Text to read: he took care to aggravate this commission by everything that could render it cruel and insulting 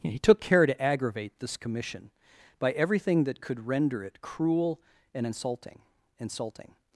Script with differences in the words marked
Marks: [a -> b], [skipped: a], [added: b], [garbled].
he took care to aggravate this commission by everything that could render it cruel and insulting [added: insulting]